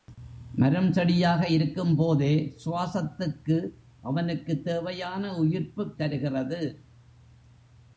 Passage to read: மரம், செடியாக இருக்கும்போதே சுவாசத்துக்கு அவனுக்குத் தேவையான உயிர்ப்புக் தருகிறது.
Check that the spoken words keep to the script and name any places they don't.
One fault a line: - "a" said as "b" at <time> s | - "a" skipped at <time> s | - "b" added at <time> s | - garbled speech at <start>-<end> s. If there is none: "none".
none